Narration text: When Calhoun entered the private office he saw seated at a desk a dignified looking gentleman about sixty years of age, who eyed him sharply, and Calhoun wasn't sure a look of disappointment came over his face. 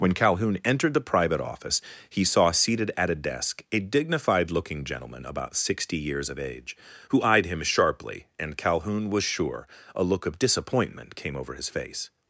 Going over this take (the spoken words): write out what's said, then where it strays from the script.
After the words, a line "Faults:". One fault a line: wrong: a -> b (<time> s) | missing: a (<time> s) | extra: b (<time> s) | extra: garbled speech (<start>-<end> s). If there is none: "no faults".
When Calhoun entered the private office he saw seated at a desk a dignified looking gentleman about sixty years of age, who eyed him sharply, and Calhoun was sure a look of disappointment came over his face.
Faults:
wrong: wasn't -> was (9.1 s)